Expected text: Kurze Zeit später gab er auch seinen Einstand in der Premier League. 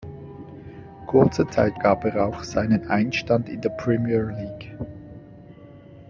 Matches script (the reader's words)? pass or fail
fail